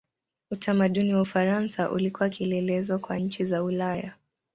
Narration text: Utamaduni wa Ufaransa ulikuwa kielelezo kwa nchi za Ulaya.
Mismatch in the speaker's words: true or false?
false